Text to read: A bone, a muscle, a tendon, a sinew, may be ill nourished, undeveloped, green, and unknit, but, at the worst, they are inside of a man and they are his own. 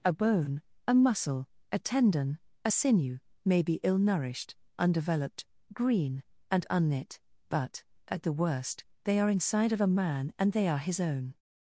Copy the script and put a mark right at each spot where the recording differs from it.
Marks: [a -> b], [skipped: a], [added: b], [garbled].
A bone, a muscle, a tendon, a sinew, may be ill nourished, undeveloped, green, and unknit, but, at the worst, they are inside of a man and they are his own.